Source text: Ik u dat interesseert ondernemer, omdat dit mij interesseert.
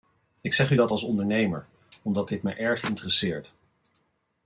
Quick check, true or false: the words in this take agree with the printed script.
false